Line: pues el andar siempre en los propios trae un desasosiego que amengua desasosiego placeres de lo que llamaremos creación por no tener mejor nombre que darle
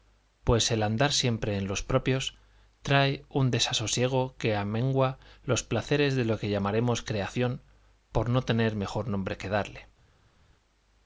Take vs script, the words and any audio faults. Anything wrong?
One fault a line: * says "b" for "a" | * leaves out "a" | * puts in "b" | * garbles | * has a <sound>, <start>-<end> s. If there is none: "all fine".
* says "los" for "desasosiego"